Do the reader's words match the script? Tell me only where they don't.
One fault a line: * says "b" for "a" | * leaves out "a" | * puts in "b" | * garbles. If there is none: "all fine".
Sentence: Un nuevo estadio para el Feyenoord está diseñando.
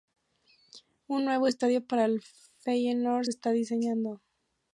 all fine